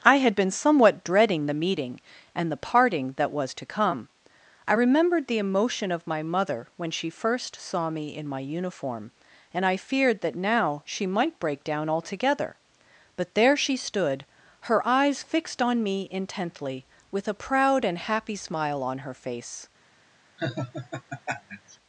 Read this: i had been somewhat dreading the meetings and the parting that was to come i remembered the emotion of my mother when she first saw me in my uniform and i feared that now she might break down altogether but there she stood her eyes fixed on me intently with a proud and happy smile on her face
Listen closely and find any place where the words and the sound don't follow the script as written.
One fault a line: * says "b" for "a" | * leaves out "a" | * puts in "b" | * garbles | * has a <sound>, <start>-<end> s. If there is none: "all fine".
* says "meeting" for "meetings"
* has a laugh, 20.4-21.8 s